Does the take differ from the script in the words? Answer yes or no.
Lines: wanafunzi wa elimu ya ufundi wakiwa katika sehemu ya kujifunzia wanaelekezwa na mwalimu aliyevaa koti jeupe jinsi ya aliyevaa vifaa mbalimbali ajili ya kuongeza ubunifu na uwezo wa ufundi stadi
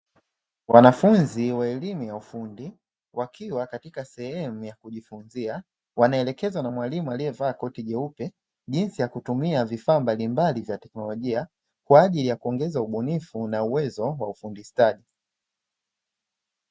yes